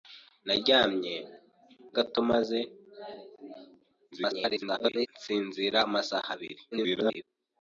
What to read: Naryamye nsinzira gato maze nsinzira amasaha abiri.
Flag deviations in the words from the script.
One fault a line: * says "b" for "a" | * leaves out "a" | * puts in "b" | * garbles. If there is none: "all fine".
* leaves out "nsinzira"
* garbles
* garbles